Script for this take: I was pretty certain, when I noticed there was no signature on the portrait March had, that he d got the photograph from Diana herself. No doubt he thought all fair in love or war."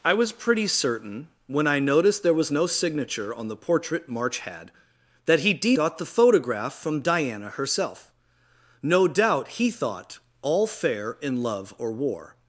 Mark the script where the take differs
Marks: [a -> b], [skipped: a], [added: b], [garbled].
I was pretty certain, when I noticed there was no signature on the portrait March had, that he d got the photograph from Diana herself. No doubt he thought all fair in love or war."